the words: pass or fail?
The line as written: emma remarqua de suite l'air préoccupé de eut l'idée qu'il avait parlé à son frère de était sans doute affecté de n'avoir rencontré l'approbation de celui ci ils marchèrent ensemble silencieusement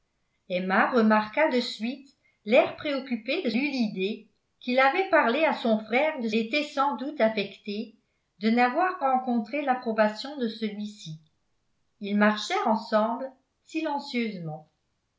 pass